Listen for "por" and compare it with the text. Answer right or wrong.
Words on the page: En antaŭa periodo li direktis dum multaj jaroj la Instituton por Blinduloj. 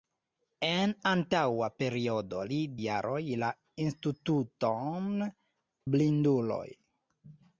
wrong